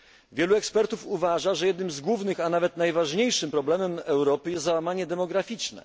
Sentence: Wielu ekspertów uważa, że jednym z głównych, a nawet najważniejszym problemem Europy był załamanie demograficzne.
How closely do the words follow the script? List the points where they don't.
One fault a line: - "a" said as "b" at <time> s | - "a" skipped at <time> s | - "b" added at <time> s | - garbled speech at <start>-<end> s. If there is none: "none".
- "był" said as "jest" at 4.5 s